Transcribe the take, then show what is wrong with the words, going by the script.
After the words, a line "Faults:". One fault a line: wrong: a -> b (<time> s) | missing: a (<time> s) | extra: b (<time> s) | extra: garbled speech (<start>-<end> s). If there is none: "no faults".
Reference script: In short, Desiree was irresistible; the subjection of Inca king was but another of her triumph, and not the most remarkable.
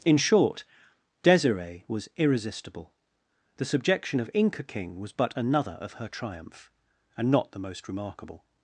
In short, Desiree was irresistible; the subjection of Inca king was but another of her triumph, and not the most remarkable.
Faults:
no faults